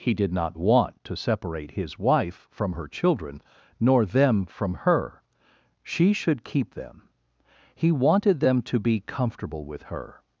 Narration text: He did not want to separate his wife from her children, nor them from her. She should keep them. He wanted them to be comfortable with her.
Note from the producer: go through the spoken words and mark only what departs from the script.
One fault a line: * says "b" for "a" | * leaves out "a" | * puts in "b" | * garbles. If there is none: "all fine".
all fine